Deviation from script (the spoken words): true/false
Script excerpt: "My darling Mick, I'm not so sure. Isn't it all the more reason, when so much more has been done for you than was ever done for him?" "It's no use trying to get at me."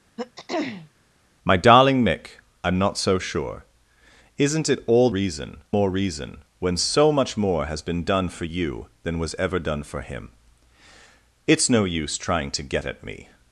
true